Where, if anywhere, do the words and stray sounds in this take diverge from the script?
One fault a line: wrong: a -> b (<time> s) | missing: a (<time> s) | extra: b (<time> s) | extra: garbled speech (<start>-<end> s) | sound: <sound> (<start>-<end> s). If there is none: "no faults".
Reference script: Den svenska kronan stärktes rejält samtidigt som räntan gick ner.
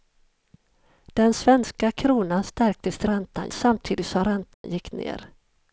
wrong: rejält -> räntan (3.1 s)
sound: dropout (4.5-4.6 s)